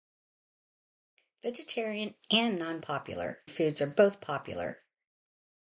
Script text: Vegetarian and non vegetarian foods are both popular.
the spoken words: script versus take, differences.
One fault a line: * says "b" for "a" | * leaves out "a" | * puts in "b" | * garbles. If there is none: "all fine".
* says "popular" for "vegetarian"